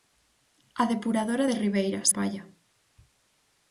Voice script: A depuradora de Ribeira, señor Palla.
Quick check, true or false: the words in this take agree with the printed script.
false